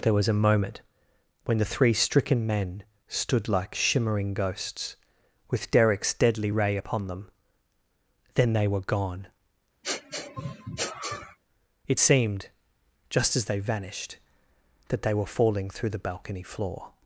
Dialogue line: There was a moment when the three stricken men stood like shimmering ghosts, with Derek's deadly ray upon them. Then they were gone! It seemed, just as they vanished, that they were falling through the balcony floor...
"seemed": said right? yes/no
yes